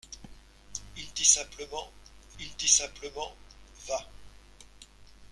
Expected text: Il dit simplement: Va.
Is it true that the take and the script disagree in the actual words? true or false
true